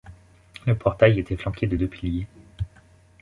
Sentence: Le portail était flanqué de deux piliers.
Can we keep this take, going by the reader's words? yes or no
yes